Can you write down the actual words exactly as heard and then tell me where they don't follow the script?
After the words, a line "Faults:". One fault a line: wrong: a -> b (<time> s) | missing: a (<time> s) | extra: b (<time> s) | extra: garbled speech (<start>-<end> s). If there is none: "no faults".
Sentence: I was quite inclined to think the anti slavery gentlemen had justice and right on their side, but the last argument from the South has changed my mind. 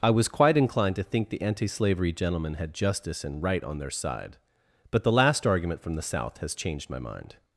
I was quite inclined to think the anti slavery gentlemen had justice and right on their side, but the last argument from the South has changed my mind.
Faults:
no faults